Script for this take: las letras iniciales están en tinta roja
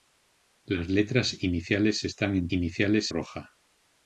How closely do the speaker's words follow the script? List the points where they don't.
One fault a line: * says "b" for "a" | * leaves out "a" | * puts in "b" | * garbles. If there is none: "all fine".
* says "iniciales" for "tinta"